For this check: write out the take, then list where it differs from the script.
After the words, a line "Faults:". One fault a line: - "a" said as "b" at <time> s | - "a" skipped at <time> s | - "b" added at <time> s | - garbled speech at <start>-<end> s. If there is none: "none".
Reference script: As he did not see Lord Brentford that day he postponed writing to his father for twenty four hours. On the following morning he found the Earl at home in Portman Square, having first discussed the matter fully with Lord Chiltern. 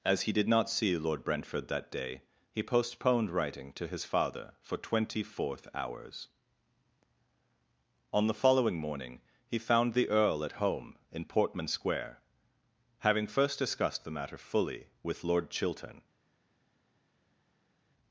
As he did not see Lord Brentford that day he postponed writing to his father for twenty fourth hours. On the following morning he found the Earl at home in Portman Square, having first discussed the matter fully with Lord Chiltern.
Faults:
- "four" said as "fourth" at 5.2 s